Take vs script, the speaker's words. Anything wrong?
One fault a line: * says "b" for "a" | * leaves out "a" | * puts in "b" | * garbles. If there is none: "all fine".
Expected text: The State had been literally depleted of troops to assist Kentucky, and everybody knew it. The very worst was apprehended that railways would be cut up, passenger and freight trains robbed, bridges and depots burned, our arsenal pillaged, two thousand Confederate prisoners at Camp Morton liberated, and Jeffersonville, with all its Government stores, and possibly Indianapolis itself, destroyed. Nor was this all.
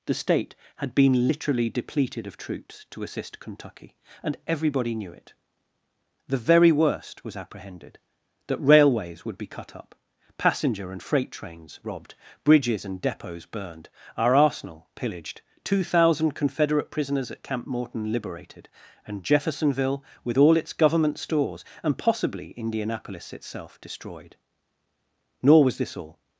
all fine